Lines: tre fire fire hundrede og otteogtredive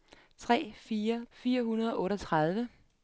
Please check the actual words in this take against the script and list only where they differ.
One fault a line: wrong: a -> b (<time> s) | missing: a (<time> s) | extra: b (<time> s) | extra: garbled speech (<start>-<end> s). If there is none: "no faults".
no faults